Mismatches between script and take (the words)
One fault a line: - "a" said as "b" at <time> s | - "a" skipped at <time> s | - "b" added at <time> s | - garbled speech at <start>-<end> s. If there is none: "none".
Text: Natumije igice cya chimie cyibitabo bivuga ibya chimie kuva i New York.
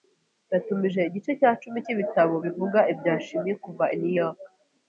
- "chimie" said as "cumi" at 1.6 s